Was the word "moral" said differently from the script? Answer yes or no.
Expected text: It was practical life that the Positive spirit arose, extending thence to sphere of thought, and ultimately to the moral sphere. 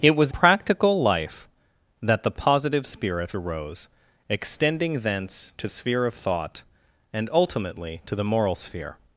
no